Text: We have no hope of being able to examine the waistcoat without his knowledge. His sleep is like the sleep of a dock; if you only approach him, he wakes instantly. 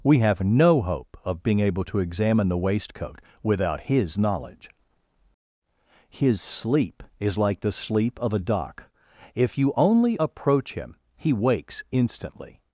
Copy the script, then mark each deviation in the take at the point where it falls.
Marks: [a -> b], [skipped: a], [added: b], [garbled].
We have no hope of being able to examine the waistcoat without his knowledge. His sleep is like the sleep of a dock; if you only approach him, he wakes instantly.